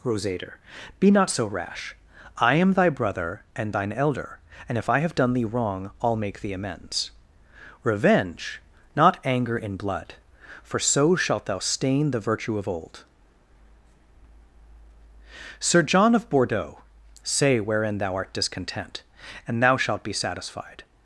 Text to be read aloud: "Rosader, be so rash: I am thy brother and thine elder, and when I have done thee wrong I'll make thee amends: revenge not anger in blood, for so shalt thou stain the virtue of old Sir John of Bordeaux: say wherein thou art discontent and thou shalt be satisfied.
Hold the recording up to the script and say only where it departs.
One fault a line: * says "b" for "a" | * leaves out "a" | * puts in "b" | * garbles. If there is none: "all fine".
* puts in "not"
* says "if" for "when"